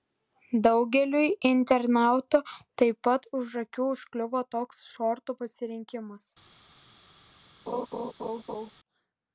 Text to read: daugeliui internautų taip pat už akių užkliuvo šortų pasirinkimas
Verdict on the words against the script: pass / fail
fail